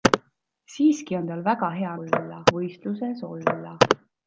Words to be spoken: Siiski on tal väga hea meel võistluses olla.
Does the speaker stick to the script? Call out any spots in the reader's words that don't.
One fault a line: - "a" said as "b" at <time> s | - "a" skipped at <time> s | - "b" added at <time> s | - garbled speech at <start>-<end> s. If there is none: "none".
- "meel" said as "olla" at 2.0 s